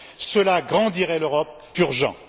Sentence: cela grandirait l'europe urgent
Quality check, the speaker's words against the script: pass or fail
pass